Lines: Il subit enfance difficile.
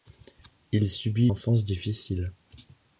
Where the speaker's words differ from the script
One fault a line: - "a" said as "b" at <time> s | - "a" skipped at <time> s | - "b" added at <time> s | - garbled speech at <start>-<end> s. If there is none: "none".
none